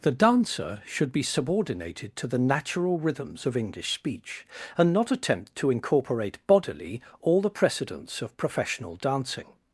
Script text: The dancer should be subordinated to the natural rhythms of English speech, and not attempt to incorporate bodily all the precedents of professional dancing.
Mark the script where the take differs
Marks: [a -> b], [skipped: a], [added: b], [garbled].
The dancer should be subordinated to the natural rhythms of English speech, and not attempt to incorporate bodily all the precedents of professional dancing.